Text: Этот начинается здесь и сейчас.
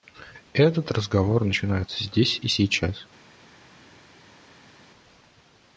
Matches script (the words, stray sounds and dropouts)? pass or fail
fail